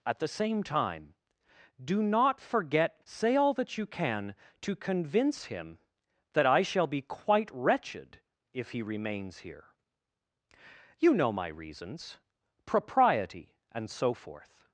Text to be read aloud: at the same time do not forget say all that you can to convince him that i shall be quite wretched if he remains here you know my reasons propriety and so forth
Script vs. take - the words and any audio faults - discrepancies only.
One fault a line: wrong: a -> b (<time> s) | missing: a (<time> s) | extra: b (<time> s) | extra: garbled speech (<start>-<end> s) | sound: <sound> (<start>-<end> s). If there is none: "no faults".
no faults